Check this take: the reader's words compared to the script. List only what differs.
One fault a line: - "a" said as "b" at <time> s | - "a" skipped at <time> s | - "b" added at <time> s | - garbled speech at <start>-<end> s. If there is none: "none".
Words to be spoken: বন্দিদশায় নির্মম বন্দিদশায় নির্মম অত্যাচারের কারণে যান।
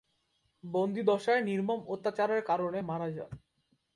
- "বন্দিদশায় নির্মম" skipped at 1.8 s
- "মারা" added at 2.8 s